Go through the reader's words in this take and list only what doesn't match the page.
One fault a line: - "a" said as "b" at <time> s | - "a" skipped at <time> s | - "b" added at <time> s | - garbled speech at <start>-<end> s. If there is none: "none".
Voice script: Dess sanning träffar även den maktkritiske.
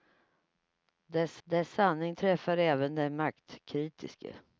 - "dess" added at 1.4 s